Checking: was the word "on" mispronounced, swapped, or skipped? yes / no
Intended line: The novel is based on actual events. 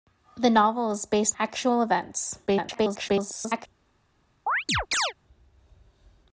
yes